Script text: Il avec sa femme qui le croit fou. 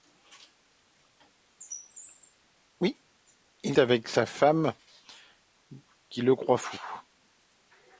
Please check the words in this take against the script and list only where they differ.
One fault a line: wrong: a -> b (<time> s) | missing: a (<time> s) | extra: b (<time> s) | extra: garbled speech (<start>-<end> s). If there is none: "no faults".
no faults